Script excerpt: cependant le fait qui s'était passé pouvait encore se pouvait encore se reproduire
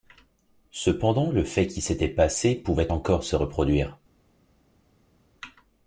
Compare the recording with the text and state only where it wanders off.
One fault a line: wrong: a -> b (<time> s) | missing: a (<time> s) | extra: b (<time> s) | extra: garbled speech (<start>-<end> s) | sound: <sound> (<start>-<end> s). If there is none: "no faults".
missing: pouvait encore se (3.3 s)